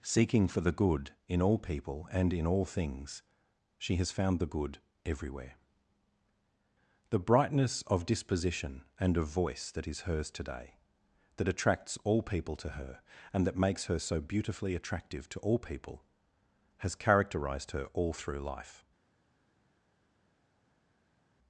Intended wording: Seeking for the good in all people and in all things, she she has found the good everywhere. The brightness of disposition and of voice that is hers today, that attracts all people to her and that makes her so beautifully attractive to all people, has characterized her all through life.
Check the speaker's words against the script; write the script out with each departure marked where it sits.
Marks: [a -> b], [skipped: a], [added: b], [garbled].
Seeking for the good in all people and in all things, she [skipped: she] has found the good everywhere. The brightness of disposition and of voice that is hers today, that attracts all people to her and that makes her so beautifully attractive to all people, has characterized her all through life.